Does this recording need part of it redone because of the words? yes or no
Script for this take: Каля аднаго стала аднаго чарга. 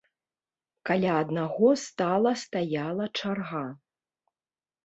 yes